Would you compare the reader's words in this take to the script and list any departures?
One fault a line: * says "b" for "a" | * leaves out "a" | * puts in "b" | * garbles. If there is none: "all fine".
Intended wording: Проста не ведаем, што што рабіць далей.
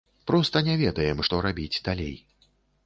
* leaves out "што"